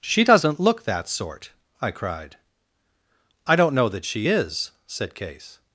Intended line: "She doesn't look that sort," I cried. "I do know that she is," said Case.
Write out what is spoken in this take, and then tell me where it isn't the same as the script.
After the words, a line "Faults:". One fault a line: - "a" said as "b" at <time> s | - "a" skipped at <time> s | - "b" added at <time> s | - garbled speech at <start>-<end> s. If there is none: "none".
"She doesn't look that sort," I cried. "I don't know that she is," said Case.
Faults:
- "do" said as "don't" at 3.6 s